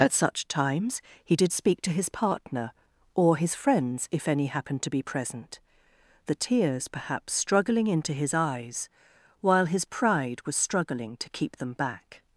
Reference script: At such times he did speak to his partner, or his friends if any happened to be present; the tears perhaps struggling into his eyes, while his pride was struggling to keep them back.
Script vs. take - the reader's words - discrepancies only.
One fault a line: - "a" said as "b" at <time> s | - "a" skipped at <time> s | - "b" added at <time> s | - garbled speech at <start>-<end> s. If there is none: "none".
none